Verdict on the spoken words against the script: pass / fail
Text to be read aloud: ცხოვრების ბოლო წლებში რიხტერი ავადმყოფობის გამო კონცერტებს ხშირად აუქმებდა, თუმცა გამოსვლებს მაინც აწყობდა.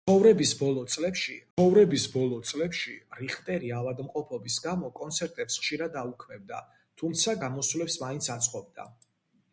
fail